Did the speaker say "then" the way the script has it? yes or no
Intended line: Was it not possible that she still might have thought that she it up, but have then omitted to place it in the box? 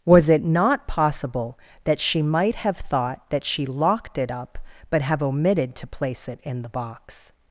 no